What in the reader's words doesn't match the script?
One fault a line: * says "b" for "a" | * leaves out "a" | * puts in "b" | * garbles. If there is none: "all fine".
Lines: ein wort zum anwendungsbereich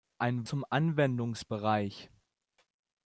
* leaves out "wort"